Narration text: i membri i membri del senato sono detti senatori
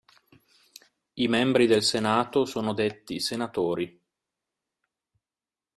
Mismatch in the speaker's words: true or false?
true